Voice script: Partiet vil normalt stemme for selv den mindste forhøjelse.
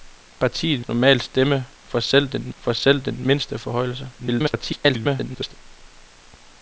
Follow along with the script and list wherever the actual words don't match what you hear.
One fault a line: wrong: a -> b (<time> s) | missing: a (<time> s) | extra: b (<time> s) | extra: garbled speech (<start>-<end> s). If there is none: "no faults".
missing: vil (0.8 s)
extra: for selv den (2.6 s)
extra: garbled speech (4.2-5.5 s)